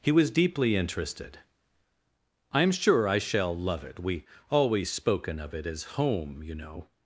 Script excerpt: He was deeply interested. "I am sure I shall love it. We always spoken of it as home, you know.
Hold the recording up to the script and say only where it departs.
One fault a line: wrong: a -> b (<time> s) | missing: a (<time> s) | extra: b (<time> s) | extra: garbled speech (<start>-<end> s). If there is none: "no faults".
no faults